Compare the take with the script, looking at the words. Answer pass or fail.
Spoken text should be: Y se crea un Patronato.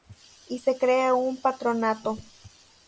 pass